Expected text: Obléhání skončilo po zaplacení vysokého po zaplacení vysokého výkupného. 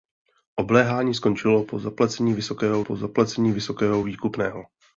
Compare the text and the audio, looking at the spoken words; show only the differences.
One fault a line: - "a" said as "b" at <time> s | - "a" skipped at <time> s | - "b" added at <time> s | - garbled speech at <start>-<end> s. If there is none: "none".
none